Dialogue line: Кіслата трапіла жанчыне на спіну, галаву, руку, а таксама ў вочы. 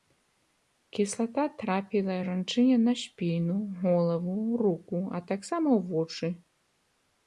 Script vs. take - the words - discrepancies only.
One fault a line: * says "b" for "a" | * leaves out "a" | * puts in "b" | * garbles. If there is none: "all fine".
all fine